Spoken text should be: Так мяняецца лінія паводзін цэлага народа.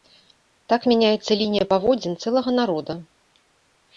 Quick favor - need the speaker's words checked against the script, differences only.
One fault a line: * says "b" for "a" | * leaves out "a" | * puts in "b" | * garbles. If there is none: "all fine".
all fine